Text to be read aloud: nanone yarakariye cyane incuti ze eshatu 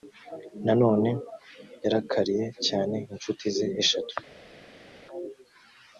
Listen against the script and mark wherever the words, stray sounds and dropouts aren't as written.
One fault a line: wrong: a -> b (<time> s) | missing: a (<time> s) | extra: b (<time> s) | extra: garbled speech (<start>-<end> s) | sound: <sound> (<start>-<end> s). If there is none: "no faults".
no faults